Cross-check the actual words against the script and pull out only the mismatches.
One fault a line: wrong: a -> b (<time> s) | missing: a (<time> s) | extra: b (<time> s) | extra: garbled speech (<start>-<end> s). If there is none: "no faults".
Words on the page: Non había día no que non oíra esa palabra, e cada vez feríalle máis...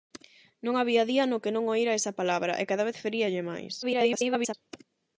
extra: garbled speech (3.8-4.5 s)